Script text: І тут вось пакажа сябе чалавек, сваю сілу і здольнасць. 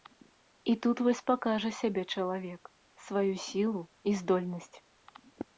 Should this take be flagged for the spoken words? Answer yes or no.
no